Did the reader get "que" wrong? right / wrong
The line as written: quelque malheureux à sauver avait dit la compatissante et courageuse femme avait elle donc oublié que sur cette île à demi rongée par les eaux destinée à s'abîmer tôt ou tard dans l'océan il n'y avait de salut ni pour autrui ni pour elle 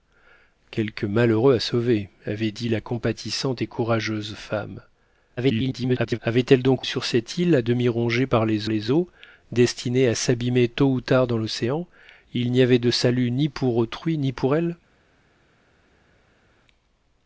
wrong